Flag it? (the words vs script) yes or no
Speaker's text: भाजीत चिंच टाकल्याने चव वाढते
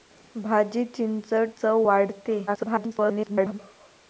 yes